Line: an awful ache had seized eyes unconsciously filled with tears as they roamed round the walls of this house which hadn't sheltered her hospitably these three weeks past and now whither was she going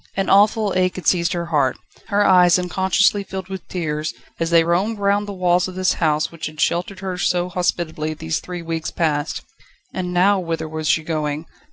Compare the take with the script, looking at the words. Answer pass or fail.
fail